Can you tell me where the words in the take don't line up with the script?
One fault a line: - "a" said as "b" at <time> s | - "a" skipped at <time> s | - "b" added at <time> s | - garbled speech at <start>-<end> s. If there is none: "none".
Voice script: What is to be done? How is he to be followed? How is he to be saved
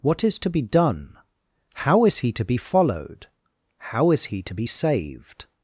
none